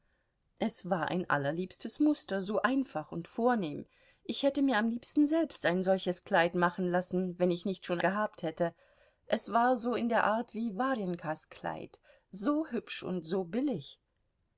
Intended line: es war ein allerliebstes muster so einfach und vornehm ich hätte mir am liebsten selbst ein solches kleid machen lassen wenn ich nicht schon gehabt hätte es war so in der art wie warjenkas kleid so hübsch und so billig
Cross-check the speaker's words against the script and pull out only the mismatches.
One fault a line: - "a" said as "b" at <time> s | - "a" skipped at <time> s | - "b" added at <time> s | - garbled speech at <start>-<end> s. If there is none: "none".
none